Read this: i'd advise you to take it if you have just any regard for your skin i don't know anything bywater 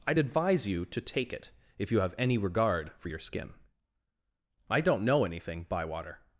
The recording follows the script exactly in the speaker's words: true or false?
false